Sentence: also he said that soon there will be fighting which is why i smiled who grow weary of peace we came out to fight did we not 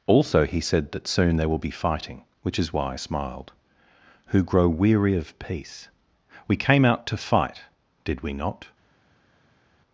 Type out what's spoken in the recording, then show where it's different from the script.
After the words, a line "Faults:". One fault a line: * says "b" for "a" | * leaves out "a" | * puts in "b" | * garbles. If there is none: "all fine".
also he said that soon there will be fighting which is why i smiled who grow weary of peace we came out to fight did we not
Faults:
all fine